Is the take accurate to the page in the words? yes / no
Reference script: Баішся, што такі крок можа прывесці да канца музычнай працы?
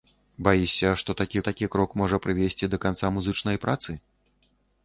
no